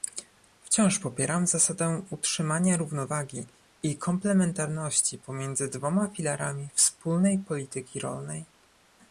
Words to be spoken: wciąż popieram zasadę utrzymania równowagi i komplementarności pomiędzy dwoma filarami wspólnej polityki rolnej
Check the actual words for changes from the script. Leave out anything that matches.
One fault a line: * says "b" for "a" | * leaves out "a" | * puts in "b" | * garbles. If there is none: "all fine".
all fine